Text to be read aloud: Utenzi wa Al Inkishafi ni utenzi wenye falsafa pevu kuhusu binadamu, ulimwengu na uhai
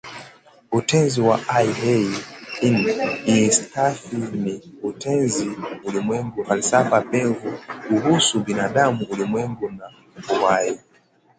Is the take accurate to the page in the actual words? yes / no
no